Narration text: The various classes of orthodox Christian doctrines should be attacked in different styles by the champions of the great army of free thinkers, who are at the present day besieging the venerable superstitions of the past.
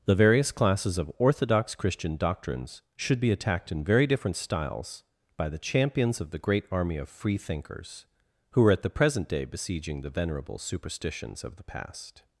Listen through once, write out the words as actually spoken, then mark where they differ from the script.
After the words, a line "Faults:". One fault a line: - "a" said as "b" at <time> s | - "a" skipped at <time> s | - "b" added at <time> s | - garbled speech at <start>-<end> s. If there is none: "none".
The various classes of orthodox Christian doctrines should be attacked in very different styles by the champions of the great army of free thinkers, who are at the present day besieging the venerable superstitions of the past.
Faults:
- "very" added at 3.8 s